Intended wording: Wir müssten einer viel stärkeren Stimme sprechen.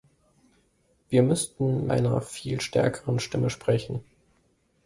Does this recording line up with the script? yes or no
yes